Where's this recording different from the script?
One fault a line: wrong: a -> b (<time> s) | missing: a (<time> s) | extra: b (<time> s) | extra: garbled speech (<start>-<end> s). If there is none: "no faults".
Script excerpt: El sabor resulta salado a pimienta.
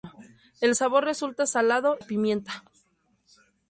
no faults